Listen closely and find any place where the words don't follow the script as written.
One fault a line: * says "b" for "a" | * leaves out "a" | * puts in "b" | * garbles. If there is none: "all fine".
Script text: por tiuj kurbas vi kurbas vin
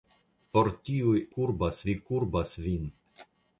all fine